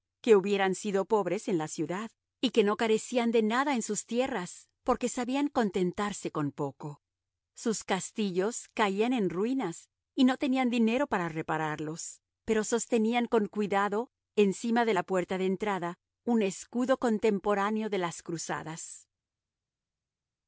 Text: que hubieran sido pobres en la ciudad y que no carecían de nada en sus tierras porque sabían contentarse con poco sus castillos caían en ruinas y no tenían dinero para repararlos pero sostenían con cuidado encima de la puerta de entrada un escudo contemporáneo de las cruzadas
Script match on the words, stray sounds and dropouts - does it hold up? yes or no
yes